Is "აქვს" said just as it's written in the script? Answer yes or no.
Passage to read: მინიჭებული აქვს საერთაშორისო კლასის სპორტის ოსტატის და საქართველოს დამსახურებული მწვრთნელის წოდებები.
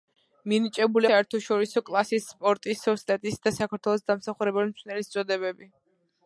no